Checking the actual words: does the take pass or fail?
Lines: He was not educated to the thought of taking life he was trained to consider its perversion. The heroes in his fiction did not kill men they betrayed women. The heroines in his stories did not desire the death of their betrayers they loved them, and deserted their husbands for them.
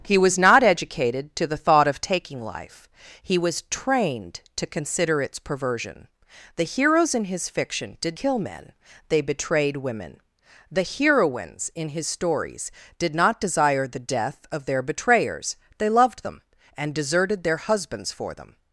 fail